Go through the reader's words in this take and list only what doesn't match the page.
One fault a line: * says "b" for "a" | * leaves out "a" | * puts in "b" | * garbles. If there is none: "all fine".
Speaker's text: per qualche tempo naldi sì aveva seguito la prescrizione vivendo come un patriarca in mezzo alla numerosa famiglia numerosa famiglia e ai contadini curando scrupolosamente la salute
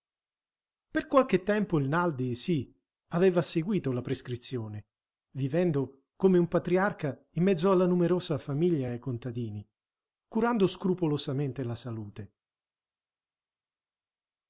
* puts in "il"
* leaves out "numerosa famiglia"